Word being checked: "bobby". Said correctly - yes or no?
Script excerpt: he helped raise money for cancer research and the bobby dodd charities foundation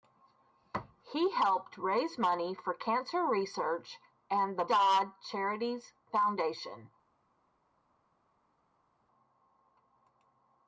no